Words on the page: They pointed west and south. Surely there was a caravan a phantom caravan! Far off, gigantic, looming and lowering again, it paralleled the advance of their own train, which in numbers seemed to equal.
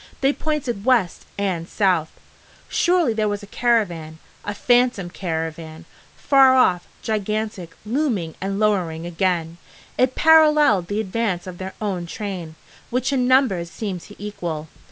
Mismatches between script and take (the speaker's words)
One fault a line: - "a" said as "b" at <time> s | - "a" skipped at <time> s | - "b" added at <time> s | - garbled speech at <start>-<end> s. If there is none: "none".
none